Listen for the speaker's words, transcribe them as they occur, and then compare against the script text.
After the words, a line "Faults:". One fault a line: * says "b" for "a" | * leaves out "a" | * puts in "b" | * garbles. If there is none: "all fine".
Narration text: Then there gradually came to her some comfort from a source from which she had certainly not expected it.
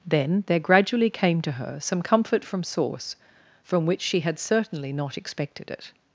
Then there gradually came to her some comfort from source from which she had certainly not expected it.
Faults:
* leaves out "a"